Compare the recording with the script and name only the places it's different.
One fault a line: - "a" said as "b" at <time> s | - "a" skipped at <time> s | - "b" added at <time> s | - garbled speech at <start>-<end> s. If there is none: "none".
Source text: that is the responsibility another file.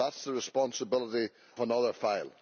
none